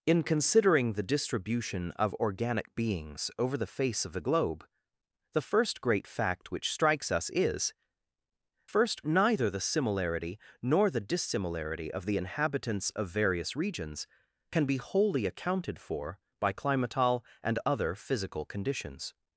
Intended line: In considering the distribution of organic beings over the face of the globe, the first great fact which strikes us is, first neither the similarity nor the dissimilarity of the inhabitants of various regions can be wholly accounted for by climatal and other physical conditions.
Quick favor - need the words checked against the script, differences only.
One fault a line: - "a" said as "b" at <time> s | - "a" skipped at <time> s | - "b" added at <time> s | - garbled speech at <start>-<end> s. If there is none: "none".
none